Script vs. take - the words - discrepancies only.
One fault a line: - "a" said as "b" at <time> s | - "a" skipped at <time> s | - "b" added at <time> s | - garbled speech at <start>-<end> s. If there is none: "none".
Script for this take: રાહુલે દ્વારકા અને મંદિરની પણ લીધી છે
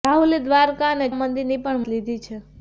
none